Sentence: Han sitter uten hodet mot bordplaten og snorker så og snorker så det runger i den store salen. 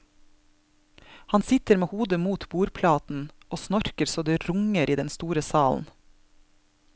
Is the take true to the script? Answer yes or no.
no